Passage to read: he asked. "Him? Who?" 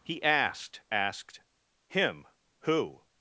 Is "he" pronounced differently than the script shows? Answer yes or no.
no